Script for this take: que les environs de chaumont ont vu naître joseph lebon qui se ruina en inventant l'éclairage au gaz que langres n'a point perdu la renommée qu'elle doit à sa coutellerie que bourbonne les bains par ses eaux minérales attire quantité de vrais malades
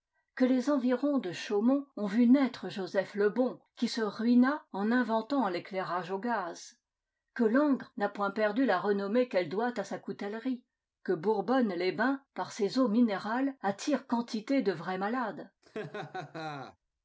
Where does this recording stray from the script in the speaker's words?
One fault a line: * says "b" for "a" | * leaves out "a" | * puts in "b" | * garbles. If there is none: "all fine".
all fine